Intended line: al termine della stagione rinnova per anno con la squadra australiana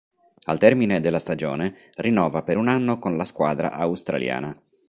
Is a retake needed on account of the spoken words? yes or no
yes